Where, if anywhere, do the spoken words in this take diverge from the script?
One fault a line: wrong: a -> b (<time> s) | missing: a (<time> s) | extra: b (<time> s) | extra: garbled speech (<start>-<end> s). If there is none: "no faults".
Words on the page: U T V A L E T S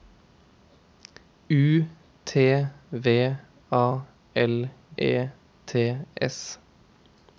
no faults